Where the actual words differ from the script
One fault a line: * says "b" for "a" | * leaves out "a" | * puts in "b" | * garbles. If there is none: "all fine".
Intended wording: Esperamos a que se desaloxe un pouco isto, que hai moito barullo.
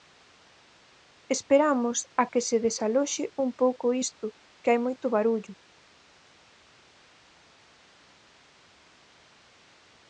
all fine